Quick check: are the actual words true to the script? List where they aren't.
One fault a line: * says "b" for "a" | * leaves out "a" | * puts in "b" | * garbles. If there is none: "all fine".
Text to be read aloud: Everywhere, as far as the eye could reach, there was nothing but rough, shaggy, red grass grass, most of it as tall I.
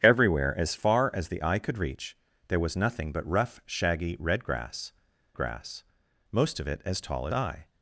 all fine